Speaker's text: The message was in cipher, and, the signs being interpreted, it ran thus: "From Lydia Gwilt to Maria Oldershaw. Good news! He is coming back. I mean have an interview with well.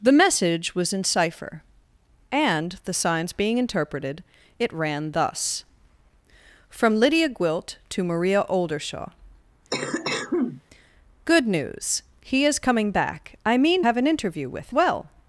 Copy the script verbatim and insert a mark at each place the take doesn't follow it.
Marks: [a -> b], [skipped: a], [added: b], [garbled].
The message was in cipher, and, the signs being interpreted, it ran thus: "From Lydia Gwilt to Maria Oldershaw. Good news! He is coming back. I mean have an interview with well.